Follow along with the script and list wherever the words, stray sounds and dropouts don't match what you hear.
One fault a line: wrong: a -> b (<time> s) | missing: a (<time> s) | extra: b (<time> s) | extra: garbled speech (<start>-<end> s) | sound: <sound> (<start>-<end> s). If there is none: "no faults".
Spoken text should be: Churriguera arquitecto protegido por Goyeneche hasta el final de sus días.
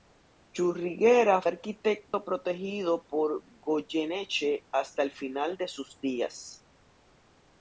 sound: dropout (2.1-2.1 s)